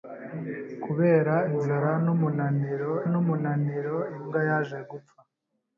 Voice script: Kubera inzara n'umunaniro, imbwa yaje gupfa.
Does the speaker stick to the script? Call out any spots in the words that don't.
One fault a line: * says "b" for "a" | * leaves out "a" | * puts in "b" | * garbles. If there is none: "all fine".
* puts in "n'umunaniro"